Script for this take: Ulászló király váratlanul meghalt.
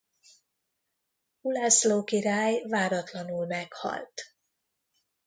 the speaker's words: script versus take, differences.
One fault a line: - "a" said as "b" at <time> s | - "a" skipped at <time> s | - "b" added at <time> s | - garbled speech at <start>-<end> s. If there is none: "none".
none